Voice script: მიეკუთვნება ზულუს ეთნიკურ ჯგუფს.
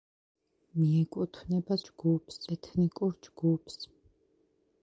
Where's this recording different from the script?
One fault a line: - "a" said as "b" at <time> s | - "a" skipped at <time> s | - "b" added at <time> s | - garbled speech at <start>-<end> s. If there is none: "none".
- "ზულუს" said as "ჯგუფს" at 1.9 s